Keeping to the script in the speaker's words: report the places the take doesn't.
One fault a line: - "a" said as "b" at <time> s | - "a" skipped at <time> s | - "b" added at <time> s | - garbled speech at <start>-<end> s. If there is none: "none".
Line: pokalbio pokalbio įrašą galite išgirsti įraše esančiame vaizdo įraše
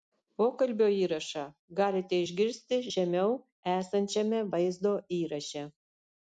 - "pokalbio" skipped at 0.8 s
- "įraše" said as "žemiau" at 3.0 s